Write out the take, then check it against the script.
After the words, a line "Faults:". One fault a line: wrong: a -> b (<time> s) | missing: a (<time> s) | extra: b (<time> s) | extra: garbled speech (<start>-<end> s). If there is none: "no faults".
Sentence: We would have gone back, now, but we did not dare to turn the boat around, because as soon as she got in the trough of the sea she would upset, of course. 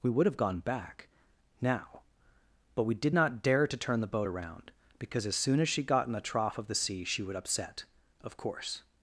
We would have gone back, now, but we did not dare to turn the boat around, because as soon as she got in the trough of the sea she would upset, of course.
Faults:
no faults